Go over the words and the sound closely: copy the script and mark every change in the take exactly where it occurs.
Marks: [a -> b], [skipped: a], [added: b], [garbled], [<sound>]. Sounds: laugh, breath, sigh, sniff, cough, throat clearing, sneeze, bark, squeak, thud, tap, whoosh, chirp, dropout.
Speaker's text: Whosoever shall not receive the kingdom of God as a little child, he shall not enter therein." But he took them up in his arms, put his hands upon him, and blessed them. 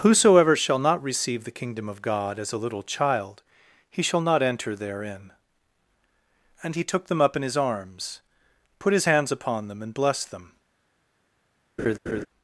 Whosoever shall not receive the kingdom of God as a little child, he shall not enter therein." [But -> And] he took them up in his arms, put his hands upon [him, -> them] and blessed them. [laugh]